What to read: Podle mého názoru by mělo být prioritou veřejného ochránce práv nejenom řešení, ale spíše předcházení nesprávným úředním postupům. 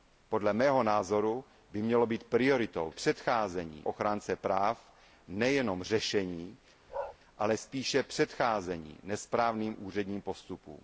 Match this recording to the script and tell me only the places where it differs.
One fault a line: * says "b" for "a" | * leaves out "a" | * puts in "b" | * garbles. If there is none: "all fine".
* says "předcházení" for "veřejného"